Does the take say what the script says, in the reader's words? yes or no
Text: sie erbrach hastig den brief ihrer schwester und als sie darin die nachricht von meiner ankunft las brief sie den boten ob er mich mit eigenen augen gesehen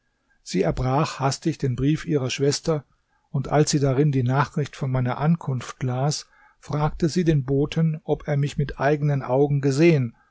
no